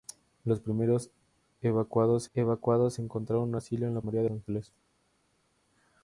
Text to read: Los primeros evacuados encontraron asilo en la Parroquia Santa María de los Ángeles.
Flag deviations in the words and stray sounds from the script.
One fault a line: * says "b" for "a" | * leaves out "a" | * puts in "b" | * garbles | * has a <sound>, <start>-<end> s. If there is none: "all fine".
* puts in "evacuados"
* leaves out "Parroquia Santa"
* leaves out "los"